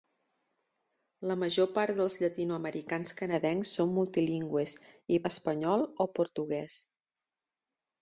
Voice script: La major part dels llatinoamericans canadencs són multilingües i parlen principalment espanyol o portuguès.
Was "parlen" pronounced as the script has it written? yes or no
no